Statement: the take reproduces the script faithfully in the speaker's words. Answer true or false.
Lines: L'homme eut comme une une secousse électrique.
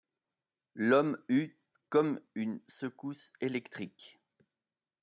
false